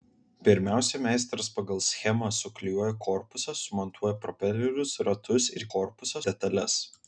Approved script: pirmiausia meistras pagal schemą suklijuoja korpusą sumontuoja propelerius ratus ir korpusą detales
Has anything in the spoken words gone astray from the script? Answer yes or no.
no